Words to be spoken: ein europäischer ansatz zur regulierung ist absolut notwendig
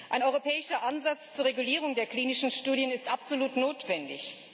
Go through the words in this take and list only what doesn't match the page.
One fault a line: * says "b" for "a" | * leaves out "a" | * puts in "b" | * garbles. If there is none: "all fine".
* puts in "der klinischen studien"